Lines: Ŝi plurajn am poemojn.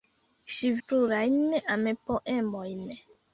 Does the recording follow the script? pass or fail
pass